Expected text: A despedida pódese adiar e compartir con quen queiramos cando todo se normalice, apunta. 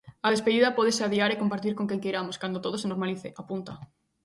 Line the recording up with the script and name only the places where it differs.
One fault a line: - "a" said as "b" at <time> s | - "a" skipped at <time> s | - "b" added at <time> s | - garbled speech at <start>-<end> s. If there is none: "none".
none